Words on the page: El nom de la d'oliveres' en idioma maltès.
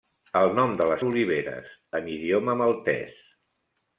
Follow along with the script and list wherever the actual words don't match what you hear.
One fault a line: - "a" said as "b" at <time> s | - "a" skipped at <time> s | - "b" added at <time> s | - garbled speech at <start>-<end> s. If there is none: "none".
none